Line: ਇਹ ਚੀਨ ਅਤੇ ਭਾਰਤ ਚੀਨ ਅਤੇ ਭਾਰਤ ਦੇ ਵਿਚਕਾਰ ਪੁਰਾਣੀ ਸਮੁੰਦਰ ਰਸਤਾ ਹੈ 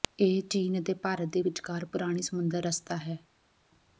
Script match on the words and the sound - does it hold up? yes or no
no